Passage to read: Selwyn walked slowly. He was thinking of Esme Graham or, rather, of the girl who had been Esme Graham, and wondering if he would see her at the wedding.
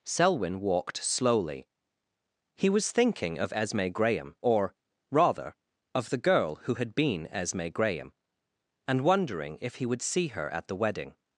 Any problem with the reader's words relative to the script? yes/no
no